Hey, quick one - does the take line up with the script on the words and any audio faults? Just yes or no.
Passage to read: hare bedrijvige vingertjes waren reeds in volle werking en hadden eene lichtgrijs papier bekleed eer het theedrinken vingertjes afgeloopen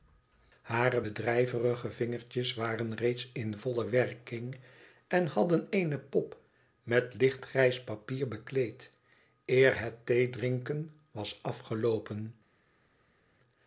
no